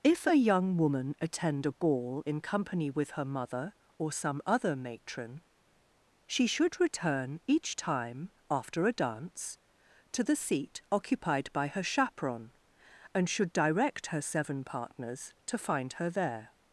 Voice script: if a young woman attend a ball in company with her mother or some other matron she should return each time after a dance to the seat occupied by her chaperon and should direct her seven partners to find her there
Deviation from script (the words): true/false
false